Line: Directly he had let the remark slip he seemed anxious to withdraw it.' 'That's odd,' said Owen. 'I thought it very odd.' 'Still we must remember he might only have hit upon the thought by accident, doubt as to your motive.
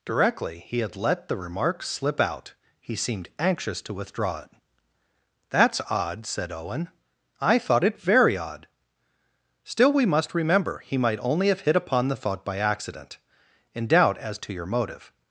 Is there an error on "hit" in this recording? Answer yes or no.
no